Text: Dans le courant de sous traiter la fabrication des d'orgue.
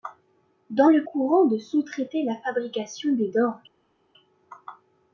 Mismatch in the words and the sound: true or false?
false